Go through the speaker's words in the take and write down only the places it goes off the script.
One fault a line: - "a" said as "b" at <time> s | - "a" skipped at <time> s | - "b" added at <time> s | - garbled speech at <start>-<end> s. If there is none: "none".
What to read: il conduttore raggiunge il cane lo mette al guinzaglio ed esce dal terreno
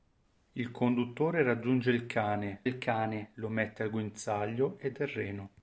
- "il cane" added at 2.6 s
- "esce dal" skipped at 5.0 s